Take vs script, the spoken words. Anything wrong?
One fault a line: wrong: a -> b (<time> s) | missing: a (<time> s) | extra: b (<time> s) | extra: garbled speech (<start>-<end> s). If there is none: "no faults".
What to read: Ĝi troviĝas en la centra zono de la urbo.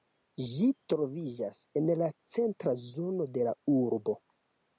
no faults